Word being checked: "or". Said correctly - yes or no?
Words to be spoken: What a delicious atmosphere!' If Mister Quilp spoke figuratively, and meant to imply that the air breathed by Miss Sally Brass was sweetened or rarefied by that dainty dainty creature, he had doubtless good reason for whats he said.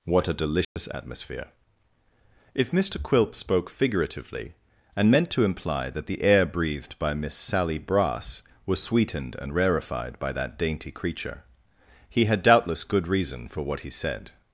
no